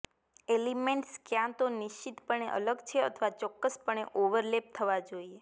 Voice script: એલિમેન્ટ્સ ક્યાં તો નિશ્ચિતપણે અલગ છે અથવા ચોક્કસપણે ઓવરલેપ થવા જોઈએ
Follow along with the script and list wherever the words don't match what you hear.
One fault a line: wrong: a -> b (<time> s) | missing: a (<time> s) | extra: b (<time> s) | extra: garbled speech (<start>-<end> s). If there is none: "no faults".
no faults